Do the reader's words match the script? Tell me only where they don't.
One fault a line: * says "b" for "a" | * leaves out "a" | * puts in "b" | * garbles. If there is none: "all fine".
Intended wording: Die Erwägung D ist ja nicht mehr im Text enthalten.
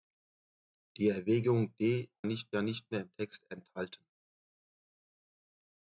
* says "nicht" for "ist"